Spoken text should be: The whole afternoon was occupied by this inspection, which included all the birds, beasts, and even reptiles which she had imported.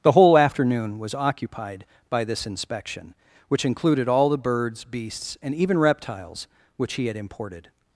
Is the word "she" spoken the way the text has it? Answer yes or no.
no